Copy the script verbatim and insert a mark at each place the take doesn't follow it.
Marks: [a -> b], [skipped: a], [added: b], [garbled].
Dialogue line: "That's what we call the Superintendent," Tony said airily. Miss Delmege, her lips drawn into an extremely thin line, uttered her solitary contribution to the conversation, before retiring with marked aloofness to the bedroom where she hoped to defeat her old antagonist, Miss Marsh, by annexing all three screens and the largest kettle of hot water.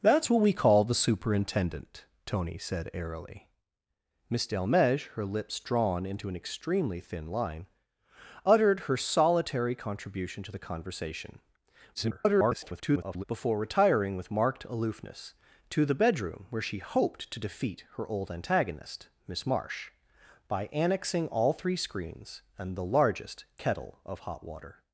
"That's what we call the Superintendent," Tony said airily. Miss Delmege, her lips drawn into an extremely thin line, uttered her solitary contribution to the conversation, [garbled] before retiring with marked aloofness to the bedroom where she hoped to defeat her old antagonist, Miss Marsh, by annexing all three screens and the largest kettle of hot water.